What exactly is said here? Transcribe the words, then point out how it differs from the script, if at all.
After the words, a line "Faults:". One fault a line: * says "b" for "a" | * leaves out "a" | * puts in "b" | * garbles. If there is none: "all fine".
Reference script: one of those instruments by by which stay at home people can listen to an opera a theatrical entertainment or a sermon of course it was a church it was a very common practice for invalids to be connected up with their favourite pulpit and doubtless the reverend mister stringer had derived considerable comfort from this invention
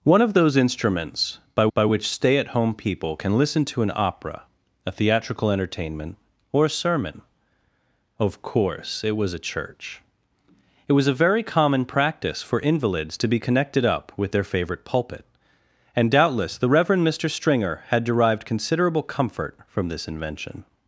one of those instruments by by which stay at home people can listen to an opera a theatrical entertainment or a sermon of course it was a church it was a very common practice for invalids to be connected up with their favourite pulpit and doubtless the reverend mister stringer had derived considerable comfort from this invention
Faults:
all fine